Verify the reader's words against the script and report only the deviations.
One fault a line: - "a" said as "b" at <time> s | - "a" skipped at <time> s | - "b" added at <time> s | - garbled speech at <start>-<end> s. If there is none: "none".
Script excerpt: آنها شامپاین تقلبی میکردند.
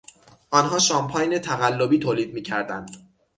- "تولید" added at 2.0 s